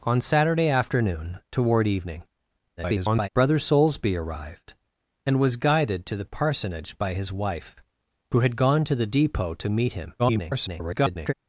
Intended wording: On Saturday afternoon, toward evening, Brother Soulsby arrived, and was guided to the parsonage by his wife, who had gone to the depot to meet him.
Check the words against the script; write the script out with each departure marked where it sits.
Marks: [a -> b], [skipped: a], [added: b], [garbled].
On Saturday afternoon, toward evening, [garbled] Brother Soulsby arrived, and was guided to the parsonage by his wife, who had gone to the depot to meet him. [garbled]